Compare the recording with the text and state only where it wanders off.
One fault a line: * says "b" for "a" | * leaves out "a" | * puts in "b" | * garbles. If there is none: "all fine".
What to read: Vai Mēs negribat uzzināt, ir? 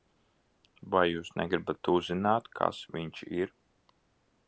* says "Jūs" for "Mēs"
* puts in "kas viņš"